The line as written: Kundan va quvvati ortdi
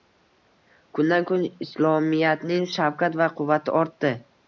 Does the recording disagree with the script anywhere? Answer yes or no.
yes